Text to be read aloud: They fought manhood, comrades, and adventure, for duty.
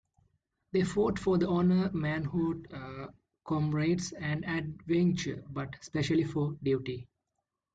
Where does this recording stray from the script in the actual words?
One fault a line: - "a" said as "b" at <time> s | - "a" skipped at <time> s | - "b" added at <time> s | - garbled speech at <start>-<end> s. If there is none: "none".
- "for honor" added at 1.2 s
- "but especially" added at 5.5 s